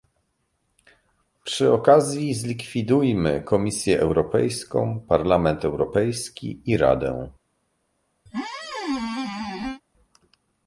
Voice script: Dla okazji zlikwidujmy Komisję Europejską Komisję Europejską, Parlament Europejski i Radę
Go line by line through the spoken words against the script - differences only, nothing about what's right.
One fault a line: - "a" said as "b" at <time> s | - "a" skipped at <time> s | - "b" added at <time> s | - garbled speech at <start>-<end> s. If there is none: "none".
- "Dla" said as "Przy" at 1.4 s
- "Komisję Europejską" skipped at 5.0 s